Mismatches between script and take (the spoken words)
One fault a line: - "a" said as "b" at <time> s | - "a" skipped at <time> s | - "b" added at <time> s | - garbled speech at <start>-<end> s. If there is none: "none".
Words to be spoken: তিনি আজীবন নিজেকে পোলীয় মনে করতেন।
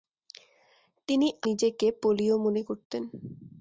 - "আজীবন" skipped at 1.3 s